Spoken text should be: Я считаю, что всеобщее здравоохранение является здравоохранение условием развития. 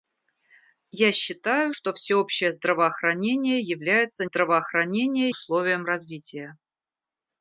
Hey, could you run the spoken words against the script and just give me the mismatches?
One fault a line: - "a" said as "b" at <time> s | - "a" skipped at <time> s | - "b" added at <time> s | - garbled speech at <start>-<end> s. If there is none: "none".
none